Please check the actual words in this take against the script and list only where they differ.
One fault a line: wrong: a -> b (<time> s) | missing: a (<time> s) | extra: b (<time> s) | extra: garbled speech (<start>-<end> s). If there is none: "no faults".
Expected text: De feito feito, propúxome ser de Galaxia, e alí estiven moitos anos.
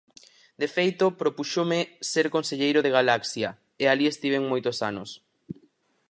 missing: feito (1.1 s)
extra: conselleiro (2.4 s)